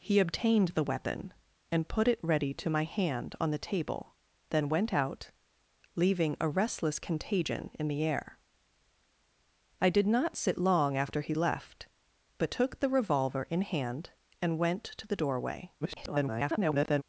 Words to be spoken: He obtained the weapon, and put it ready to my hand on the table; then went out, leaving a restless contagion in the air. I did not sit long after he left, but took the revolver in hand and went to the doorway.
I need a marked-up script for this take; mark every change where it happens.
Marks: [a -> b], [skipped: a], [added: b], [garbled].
He obtained the weapon, and put it ready to my hand on the table; then went out, leaving a restless contagion in the air. I did not sit long after he left, but took the revolver in hand and went to the doorway. [garbled]